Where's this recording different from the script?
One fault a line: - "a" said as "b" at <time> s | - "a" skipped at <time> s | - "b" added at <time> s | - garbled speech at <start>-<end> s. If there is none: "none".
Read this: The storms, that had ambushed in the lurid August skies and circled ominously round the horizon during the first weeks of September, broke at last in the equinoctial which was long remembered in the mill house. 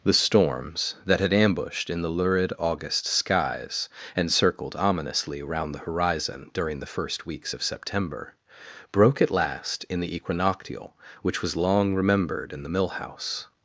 none